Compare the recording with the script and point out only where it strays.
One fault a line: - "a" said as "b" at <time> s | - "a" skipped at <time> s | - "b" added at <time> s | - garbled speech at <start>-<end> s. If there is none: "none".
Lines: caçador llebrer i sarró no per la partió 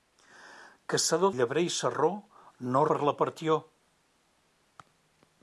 none